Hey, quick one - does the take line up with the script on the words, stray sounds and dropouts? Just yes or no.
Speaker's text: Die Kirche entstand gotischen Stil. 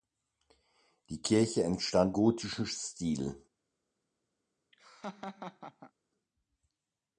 no